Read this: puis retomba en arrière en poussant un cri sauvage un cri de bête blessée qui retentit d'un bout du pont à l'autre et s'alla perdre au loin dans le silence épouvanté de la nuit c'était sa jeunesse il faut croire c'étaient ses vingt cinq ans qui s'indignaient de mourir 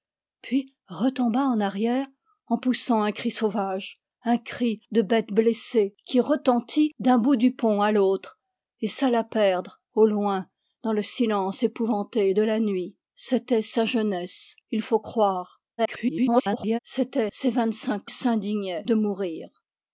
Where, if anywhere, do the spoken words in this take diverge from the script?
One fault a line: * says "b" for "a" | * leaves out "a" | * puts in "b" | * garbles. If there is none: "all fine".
* garbles
* leaves out "ans qui"